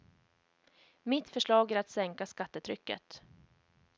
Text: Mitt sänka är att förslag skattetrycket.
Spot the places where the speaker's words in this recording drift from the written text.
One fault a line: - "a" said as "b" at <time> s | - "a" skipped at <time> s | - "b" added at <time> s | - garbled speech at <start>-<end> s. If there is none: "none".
- "sänka" said as "förslag" at 1.3 s
- "förslag" said as "sänka" at 1.9 s